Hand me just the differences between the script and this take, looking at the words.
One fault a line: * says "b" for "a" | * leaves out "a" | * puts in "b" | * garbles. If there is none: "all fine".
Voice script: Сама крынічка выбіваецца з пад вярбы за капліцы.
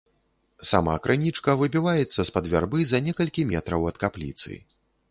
* puts in "некалькі метраў ад"